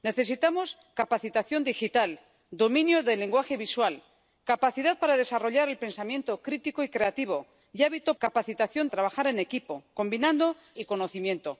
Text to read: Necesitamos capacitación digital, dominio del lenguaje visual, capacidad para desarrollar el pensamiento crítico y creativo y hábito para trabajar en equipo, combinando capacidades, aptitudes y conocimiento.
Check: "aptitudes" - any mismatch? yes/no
yes